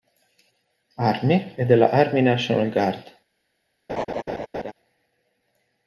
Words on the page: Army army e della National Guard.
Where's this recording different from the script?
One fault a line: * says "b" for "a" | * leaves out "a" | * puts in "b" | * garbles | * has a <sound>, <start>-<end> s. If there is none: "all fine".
* leaves out "army"
* puts in "Army"
* has a laugh, 3.9-4.7 s